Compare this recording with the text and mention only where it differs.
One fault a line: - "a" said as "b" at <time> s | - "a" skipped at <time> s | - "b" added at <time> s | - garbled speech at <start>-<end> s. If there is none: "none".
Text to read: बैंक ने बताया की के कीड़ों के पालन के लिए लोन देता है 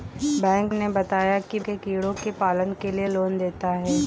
none